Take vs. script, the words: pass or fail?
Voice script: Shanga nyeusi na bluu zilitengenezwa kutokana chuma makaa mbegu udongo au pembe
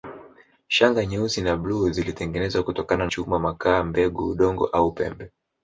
pass